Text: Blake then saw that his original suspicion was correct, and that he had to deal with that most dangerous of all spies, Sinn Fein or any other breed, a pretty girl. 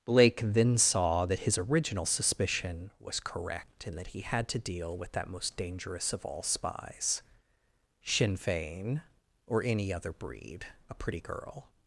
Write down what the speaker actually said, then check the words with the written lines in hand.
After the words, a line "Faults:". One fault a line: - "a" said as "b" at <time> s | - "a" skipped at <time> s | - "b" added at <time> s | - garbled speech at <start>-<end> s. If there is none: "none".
Blake then saw that his original suspicion was correct, and that he had to deal with that most dangerous of all spies, Sinn Fein or any other breed, a pretty girl.
Faults:
none